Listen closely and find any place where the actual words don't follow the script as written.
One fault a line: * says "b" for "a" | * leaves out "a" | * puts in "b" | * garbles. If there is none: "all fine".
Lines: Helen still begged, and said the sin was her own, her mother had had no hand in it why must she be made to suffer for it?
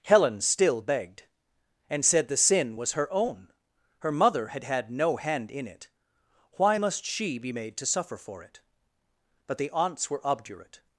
* puts in "But the aunts were obdurate"